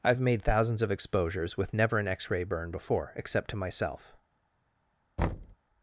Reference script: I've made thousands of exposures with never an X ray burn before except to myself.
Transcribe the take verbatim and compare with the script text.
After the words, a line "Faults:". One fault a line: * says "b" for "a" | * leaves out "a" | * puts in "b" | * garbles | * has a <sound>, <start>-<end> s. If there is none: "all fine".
I've made thousands of exposures with never an X ray burn before except to myself.
Faults:
* has a thud, 5.2-5.6 s